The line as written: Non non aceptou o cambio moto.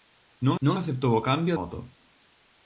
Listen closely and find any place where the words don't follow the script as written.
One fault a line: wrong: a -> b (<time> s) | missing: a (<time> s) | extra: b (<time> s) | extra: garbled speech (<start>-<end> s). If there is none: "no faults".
no faults